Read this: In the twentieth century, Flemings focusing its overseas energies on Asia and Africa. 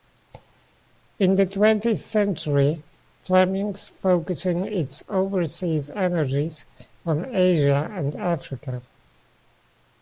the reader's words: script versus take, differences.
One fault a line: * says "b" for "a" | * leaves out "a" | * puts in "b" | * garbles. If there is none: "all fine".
all fine